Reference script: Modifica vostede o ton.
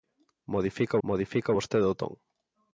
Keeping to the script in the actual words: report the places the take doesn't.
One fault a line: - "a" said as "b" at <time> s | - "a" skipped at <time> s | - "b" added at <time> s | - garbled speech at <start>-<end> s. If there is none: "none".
- "modifica" added at 1.1 s